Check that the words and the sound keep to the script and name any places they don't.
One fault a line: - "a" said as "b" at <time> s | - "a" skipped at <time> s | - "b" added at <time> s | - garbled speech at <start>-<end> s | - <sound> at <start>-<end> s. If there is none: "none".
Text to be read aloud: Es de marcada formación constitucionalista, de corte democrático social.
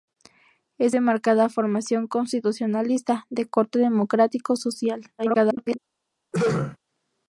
- garbled speech at 5.2-5.8 s
- throat clearing at 6.3-6.8 s